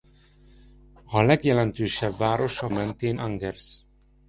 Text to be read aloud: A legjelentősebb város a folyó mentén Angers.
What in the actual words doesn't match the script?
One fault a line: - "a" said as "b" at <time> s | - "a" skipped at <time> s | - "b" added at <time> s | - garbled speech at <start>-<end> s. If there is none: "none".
- "folyó" skipped at 2.7 s